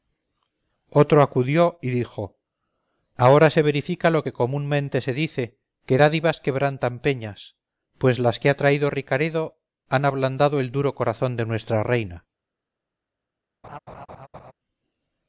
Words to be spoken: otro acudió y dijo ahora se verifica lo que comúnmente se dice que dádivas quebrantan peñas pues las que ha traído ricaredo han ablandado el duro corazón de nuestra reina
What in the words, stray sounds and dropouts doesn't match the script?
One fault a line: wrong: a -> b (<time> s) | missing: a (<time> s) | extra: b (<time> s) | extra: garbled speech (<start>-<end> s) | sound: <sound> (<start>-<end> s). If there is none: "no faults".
sound: laugh (13.6-14.5 s)